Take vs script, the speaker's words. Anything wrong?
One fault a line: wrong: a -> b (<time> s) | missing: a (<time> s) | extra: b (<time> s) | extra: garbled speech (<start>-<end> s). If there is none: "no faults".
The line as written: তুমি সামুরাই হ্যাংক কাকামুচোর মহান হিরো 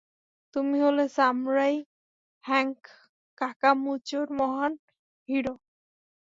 extra: হলে (0.8 s)